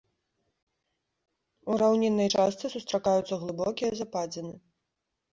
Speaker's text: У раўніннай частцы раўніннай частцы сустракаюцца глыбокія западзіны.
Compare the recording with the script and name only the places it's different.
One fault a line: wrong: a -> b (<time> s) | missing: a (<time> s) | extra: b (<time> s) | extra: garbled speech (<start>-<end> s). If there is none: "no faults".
missing: раўніннай частцы (2.7 s)